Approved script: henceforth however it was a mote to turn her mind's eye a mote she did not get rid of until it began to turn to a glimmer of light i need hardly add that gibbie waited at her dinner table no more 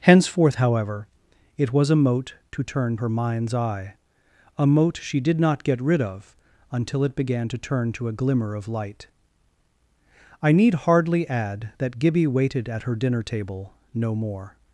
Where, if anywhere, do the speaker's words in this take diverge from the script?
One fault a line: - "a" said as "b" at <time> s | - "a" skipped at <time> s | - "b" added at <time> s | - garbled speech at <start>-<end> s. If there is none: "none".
none